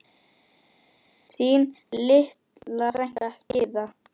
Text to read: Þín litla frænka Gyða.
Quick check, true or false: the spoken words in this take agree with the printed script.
true